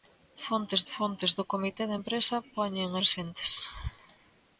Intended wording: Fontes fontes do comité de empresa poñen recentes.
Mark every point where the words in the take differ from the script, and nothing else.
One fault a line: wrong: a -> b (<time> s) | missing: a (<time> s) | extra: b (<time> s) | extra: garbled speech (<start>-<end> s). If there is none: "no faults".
no faults